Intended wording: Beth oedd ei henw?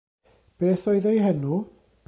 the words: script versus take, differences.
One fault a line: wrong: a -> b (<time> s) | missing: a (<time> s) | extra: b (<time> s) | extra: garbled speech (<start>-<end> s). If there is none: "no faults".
no faults